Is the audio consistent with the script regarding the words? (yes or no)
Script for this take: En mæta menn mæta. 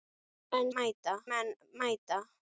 yes